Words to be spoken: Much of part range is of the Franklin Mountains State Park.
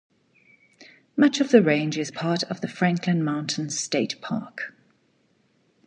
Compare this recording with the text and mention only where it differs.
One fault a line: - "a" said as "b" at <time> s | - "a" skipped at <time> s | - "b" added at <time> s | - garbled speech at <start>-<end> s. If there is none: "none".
- "part" said as "the" at 1.5 s
- "part" added at 2.1 s